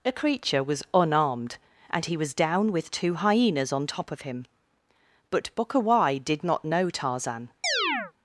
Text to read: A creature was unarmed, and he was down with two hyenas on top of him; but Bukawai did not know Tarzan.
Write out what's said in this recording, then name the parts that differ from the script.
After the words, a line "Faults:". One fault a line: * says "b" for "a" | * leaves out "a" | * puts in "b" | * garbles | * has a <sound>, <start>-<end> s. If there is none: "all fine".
A creature was unarmed, and he was down with two hyenas on top of him; but Bukawai did not know Tarzan.
Faults:
* has a chirp, 7.6-8.1 s